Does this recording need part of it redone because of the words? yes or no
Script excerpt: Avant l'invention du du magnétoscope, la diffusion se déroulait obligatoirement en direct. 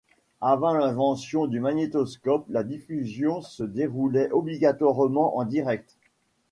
yes